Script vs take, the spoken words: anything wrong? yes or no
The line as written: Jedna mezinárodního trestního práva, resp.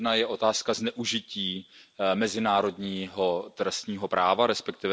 yes